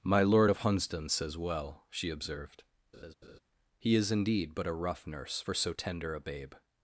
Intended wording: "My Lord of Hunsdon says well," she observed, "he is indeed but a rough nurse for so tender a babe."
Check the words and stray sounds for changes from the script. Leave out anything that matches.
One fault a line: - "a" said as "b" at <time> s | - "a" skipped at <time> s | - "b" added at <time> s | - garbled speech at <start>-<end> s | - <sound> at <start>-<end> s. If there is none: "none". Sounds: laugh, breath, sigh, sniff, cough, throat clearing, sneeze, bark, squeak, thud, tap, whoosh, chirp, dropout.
- laugh at 2.9-3.4 s